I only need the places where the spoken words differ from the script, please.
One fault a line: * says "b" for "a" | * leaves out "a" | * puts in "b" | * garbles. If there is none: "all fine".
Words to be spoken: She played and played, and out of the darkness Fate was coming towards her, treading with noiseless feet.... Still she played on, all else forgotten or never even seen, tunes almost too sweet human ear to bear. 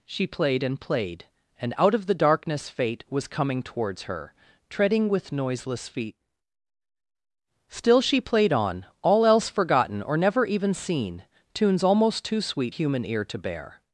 all fine